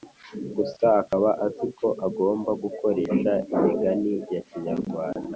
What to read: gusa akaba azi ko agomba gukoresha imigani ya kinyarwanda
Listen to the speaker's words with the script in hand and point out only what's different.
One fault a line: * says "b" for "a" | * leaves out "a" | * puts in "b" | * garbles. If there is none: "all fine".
all fine